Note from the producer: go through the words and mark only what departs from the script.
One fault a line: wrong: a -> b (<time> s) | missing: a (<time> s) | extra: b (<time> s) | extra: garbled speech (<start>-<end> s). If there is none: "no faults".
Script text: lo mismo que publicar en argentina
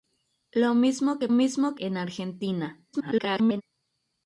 wrong: publicar -> mismo (1.3 s)
extra: garbled speech (2.9-3.6 s)